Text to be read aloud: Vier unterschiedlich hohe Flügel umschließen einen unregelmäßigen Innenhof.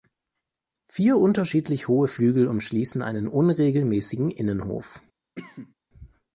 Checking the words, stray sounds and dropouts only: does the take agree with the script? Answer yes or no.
no